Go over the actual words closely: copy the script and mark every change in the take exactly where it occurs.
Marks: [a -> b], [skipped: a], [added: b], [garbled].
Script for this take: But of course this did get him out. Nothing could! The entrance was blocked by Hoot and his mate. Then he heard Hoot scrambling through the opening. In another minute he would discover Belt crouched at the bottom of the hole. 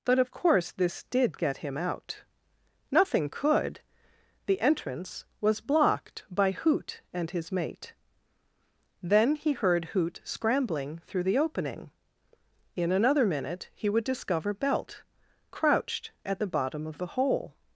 But of course this did get him out. Nothing could! The entrance was blocked by Hoot and his mate. Then he heard Hoot scrambling through the opening. In another minute he would discover Belt crouched at the bottom of the hole.